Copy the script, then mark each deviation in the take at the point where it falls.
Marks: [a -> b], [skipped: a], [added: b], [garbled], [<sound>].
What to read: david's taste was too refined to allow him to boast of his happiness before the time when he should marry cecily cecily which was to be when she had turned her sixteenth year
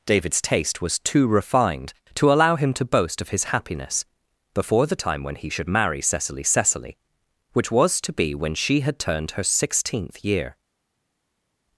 david's taste was too refined to allow him to boast of his happiness before the time when he should marry cecily cecily which was to be when she had turned her sixteenth year